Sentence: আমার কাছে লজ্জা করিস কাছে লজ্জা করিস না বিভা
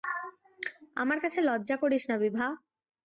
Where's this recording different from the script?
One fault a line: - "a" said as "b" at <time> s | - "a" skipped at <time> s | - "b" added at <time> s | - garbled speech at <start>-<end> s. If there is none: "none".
- "কাছে লজ্জা করিস" skipped at 2.0 s